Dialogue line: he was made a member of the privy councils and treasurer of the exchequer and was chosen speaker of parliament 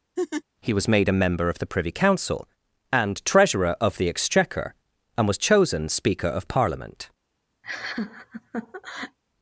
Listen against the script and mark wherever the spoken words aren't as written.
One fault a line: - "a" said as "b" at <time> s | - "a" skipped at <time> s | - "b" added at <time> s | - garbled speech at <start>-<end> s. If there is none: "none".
- "councils" said as "council" at 1.9 s